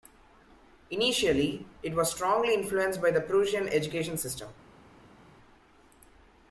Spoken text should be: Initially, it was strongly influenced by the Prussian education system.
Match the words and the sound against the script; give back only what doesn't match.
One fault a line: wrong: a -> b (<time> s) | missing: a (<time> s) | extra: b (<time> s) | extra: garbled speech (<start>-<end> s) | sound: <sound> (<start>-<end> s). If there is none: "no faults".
no faults